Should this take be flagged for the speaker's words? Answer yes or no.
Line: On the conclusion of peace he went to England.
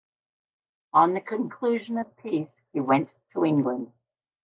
no